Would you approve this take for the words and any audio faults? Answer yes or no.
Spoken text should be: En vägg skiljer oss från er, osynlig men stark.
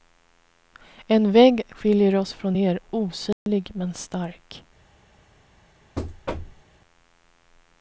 no